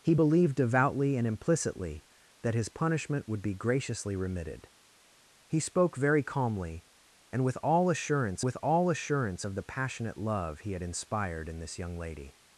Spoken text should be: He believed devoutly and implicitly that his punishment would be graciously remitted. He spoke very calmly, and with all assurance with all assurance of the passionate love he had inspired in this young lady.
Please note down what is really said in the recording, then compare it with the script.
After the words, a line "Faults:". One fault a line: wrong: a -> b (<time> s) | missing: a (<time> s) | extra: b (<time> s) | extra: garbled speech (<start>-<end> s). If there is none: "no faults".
He believed devoutly and implicitly that his punishment would be graciously remitted. He spoke very calmly, and with all assurance with all assurance of the passionate love he had inspired in this young lady.
Faults:
no faults